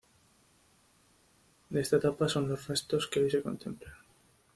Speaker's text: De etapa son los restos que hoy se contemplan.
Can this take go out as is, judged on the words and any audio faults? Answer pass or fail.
fail